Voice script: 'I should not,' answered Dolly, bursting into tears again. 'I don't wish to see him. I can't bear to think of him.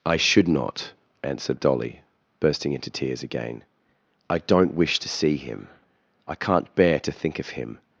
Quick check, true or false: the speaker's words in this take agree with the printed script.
true